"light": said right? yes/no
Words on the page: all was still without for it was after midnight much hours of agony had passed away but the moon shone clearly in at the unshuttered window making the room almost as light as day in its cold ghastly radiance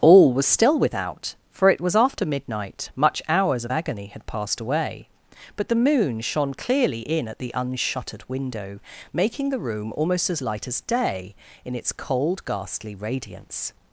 yes